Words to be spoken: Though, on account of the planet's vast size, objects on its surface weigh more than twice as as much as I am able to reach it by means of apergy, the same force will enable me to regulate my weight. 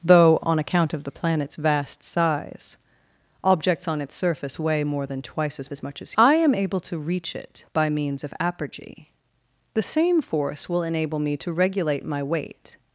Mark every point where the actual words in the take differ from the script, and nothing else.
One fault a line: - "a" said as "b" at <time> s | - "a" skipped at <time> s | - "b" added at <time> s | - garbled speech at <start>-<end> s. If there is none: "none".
none